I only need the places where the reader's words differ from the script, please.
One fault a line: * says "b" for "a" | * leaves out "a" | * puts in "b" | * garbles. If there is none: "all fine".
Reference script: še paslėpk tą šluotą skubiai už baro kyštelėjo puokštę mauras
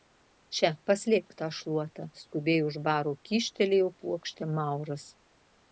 all fine